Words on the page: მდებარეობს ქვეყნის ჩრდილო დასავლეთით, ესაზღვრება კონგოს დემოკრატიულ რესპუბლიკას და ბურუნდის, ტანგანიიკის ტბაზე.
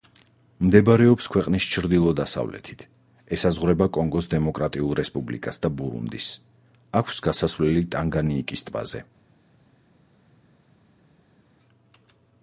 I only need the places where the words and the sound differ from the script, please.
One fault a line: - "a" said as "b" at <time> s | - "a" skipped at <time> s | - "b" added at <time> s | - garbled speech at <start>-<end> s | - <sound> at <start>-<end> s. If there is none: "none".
- "აქვს გასასვლელი" added at 7.0 s